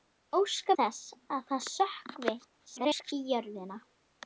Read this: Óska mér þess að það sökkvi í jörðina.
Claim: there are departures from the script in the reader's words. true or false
true